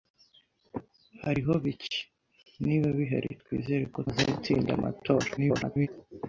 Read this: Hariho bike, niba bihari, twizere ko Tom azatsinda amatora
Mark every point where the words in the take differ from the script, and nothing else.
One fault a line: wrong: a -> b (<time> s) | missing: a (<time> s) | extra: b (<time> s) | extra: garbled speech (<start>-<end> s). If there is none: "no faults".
missing: Tom (4.0 s)
extra: garbled speech (5.4-5.9 s)